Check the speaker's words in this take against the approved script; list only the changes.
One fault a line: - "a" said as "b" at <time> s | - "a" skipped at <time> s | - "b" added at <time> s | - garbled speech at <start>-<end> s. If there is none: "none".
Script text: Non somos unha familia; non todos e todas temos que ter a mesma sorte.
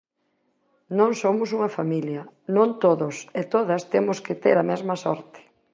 none